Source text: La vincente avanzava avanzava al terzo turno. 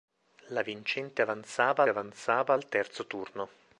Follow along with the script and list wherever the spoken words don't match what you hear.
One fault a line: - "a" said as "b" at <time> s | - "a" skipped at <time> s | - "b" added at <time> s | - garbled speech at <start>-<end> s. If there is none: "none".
none